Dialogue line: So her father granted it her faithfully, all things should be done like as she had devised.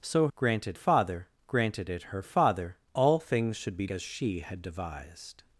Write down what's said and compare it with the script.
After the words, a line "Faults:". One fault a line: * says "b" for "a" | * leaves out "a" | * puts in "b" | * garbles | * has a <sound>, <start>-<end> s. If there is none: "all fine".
So granted father granted it her father, all things should be as she had devised.
Faults:
* says "granted" for "her"
* says "father" for "faithfully"
* leaves out "done like"